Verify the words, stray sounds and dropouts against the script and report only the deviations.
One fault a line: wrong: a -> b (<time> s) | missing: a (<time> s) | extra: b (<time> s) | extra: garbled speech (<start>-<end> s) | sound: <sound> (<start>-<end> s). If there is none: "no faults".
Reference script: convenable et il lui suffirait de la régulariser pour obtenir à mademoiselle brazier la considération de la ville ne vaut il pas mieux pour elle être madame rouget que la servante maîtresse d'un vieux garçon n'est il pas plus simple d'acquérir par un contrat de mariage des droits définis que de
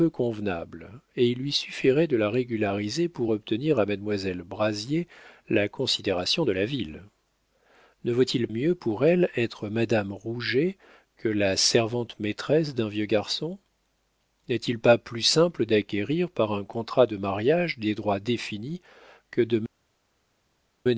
missing: pas (8.5 s)